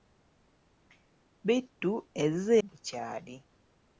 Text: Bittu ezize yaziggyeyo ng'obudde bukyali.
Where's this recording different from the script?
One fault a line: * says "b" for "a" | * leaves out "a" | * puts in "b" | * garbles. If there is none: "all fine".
* leaves out "yaziggyeyo ng'obudde"